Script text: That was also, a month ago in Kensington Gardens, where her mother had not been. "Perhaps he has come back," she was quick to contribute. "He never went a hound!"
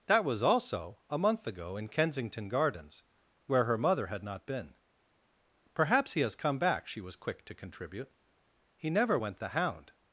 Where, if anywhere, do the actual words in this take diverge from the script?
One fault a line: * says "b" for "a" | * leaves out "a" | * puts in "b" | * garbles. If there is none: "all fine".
* says "the" for "a"